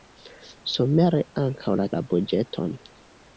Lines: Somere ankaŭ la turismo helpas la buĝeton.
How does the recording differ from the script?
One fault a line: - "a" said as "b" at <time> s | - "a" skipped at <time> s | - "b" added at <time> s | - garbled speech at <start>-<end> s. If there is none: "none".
- "turismo helpas" skipped at 1.9 s